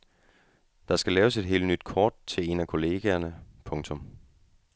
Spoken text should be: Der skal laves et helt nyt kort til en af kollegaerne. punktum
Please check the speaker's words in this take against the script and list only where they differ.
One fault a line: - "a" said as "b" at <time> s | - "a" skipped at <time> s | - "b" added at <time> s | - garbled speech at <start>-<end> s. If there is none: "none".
none